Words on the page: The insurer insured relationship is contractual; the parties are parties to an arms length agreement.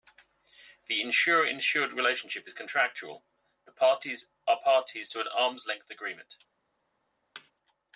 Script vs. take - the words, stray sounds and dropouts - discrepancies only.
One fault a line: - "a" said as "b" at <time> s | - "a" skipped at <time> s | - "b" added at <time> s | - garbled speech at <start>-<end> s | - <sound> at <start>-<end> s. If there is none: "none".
- thud at 7.3-7.5 s